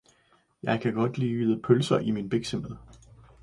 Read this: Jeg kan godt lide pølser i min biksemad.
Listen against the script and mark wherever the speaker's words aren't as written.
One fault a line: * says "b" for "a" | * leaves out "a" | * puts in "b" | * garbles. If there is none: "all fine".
all fine